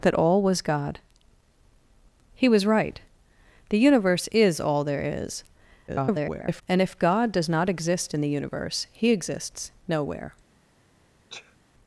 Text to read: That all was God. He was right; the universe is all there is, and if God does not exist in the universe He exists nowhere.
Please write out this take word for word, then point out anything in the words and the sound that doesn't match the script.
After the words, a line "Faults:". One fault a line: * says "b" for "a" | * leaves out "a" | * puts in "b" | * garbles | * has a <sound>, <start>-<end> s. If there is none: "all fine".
That all was God. He was right; the universe is all there is, [garbled] and if God does not exist in the universe He exists nowhere.
Faults:
* garbles
* has a sneeze, 11.3-11.6 s